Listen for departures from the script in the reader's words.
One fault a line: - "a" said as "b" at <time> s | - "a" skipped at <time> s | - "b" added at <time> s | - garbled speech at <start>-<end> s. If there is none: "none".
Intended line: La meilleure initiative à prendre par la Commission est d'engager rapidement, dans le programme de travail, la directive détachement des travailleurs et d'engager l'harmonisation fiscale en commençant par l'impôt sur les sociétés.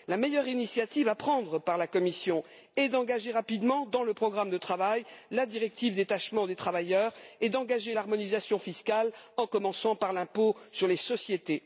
none